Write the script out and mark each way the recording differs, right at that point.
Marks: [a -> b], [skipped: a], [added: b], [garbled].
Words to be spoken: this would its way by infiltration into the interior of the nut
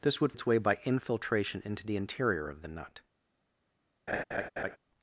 this would its way by infiltration into the interior of the nut